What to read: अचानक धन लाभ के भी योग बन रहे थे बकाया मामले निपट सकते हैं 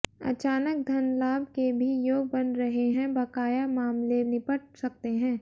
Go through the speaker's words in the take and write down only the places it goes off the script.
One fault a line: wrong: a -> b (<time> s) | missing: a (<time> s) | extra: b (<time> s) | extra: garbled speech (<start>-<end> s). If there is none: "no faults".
wrong: थे -> हैं (2.9 s)